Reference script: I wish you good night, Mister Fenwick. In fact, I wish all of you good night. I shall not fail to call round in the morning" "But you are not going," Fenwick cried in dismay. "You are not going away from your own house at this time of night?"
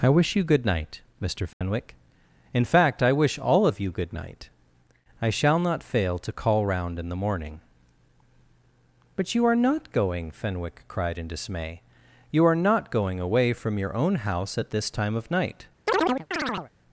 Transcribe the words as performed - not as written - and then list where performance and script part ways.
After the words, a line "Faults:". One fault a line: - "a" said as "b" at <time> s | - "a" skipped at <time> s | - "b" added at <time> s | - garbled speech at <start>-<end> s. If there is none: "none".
I wish you good night, Mister Fenwick. In fact, I wish all of you good night. I shall not fail to call round in the morning" "But you are not going," Fenwick cried in dismay. "You are not going away from your own house at this time of night?"
Faults:
none